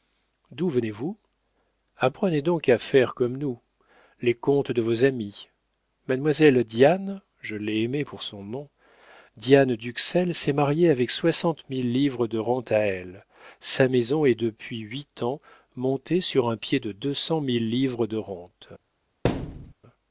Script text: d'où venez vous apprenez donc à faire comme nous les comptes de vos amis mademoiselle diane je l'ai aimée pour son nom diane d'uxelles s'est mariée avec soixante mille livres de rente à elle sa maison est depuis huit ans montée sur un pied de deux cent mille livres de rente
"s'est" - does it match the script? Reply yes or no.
yes